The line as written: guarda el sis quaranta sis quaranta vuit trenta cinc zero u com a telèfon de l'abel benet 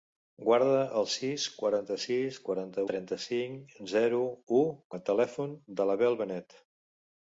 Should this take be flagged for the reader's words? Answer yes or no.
yes